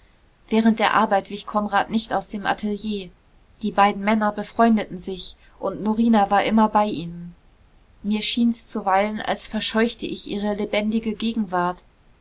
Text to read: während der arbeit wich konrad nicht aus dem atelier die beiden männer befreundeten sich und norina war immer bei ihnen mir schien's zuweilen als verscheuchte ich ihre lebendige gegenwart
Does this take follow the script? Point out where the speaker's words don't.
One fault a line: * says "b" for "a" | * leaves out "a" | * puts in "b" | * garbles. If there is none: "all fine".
all fine